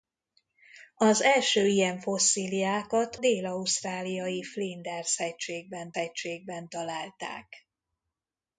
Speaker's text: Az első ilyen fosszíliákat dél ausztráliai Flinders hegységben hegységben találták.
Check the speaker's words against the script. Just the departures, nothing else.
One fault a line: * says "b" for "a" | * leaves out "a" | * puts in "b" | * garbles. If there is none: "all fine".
all fine